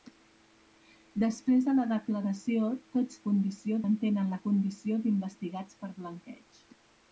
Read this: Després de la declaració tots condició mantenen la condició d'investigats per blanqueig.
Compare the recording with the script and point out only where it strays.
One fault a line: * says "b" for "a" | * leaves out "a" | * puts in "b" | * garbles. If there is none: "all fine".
all fine